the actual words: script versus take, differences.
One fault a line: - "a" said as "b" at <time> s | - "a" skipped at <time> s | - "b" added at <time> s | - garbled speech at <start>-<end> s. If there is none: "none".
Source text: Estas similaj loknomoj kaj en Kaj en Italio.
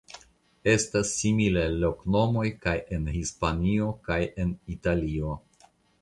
- "Hispanio" added at 3.1 s